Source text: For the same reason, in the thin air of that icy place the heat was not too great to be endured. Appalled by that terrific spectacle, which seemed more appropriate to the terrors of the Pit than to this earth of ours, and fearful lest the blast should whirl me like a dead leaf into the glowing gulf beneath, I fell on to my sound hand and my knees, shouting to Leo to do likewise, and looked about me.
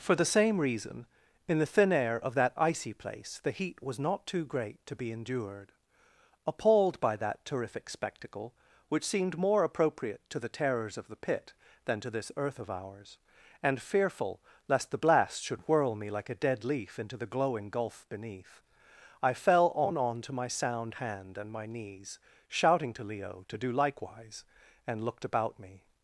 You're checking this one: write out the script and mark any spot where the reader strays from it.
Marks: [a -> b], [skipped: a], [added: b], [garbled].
For the same reason, in the thin air of that icy place the heat was not too great to be endured. Appalled by that terrific spectacle, which seemed more appropriate to the terrors of the Pit than to this earth of ours, and fearful lest the blast should whirl me like a dead leaf into the glowing gulf beneath, I fell on [added: on] to my sound hand and my knees, shouting to Leo to do likewise, and looked about me.